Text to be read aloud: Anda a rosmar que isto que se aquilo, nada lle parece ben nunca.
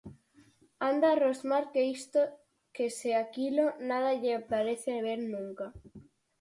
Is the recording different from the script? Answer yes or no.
no